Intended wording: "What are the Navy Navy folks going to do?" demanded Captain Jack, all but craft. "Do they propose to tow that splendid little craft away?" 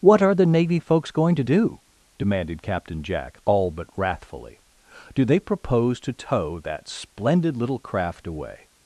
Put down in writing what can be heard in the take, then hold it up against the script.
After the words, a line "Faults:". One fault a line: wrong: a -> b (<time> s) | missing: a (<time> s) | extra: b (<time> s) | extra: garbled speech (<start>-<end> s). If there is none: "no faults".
"What are the Navy folks going to do?" demanded Captain Jack, all but wrathfully. "Do they propose to tow that splendid little craft away?"
Faults:
missing: Navy (0.8 s)
wrong: craft -> wrathfully (4.0 s)